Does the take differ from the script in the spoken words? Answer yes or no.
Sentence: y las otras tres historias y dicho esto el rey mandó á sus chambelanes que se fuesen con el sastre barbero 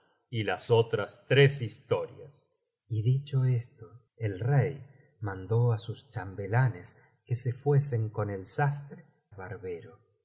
no